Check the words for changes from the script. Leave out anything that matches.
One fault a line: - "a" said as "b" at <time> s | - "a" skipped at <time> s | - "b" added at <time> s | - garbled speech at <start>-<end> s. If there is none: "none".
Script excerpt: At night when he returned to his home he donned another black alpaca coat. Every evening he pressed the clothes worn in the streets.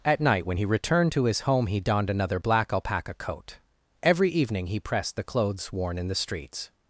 none